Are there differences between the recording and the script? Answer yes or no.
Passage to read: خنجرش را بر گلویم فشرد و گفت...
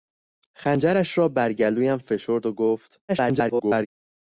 yes